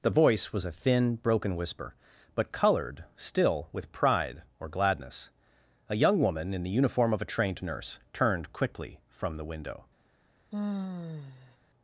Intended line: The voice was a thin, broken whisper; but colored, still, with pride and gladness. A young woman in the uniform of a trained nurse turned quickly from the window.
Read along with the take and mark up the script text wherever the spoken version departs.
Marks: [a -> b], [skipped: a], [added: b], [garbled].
The voice was a thin, broken whisper; but colored, still, with pride [and -> or] gladness. A young woman in the uniform of a trained nurse turned quickly from the window.